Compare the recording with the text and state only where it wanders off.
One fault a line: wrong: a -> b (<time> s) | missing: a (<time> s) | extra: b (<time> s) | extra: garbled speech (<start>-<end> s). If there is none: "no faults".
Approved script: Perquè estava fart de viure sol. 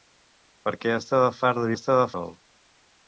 wrong: viure -> estava (1.7 s)